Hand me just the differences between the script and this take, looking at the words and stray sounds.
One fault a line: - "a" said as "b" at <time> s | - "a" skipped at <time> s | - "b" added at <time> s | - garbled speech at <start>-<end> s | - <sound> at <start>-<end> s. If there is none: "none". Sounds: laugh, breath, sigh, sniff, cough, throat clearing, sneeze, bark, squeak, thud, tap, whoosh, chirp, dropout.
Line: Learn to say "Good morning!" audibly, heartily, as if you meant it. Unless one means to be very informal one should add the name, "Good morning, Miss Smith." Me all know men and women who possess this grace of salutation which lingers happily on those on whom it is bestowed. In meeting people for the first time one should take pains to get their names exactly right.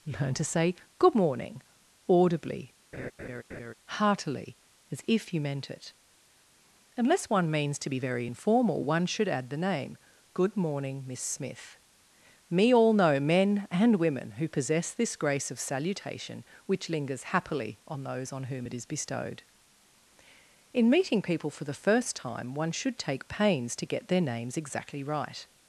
- laugh at 2.9-3.7 s